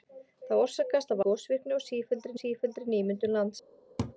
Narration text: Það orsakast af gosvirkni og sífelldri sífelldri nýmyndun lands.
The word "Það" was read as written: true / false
true